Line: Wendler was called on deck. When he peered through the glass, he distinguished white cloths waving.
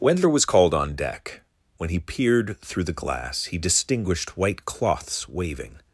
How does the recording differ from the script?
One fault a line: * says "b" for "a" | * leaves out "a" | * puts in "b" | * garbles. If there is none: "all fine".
all fine